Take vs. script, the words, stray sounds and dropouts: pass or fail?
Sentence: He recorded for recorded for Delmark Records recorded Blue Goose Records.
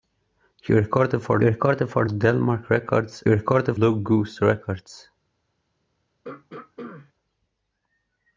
fail